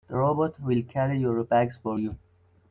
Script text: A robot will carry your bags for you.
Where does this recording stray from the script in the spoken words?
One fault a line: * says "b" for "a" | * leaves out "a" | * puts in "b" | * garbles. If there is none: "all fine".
* says "The" for "A"